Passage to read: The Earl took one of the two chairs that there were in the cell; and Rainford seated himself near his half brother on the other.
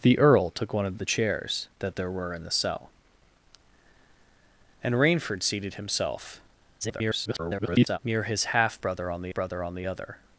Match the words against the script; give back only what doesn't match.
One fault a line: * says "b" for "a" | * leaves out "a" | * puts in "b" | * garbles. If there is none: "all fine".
* leaves out "two"
* garbles
* puts in "brother on the"